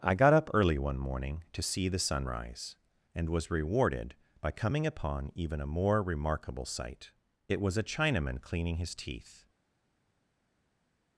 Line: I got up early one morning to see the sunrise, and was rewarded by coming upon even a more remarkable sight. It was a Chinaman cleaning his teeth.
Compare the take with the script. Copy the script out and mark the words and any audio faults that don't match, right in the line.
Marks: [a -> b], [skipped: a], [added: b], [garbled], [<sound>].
I got up early one morning to see the sunrise, and was rewarded by coming upon even a more remarkable sight. It was a Chinaman cleaning his teeth.